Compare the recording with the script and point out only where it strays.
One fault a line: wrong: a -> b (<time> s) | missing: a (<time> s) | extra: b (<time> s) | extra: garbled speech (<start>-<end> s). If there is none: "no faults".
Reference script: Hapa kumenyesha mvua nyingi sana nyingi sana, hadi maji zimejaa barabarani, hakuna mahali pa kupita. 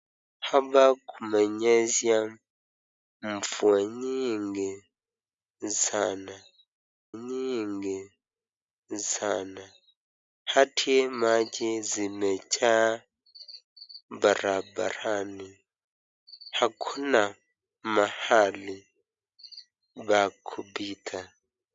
no faults